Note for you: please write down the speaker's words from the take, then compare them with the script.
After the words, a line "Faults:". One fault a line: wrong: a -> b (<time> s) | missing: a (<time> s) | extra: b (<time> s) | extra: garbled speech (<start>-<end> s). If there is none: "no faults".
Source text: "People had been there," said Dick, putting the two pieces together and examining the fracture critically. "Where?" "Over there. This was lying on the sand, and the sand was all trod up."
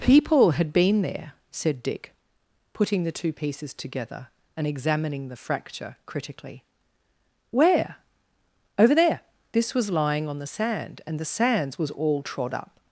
"People had been there," said Dick, putting the two pieces together and examining the fracture critically. "Where?" "Over there. This was lying on the sand, and the sands was all trod up."
Faults:
wrong: sand -> sands (11.3 s)